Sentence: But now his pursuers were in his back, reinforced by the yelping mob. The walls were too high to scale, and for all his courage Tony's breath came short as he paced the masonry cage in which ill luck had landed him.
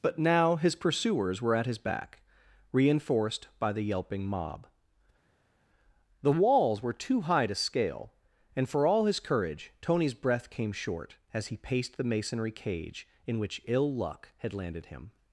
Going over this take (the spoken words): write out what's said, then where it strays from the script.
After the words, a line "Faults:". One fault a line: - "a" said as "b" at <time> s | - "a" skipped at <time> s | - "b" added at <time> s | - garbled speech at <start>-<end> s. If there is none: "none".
But now his pursuers were at his back, reinforced by the yelping mob. The walls were too high to scale, and for all his courage Tony's breath came short as he paced the masonry cage in which ill luck had landed him.
Faults:
- "in" said as "at" at 1.6 s